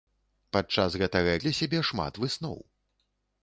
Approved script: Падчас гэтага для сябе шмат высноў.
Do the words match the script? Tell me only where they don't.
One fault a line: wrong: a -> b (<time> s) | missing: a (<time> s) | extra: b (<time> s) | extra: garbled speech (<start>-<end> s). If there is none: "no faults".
no faults